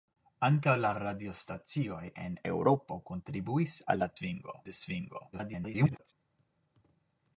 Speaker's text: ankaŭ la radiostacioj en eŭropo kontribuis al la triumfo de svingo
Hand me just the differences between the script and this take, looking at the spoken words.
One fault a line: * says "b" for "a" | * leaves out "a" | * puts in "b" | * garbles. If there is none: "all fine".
* says "svingo" for "triumfo"
* garbles